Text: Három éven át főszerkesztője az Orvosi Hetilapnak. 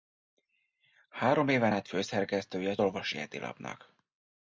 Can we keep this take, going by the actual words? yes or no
yes